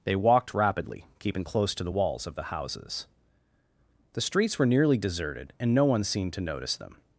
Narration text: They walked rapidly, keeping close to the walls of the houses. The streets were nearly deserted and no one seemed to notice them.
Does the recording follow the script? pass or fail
pass